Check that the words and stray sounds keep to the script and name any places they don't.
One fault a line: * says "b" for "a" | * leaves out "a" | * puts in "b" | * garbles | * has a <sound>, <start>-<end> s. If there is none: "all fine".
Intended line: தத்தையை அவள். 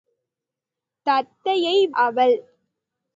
all fine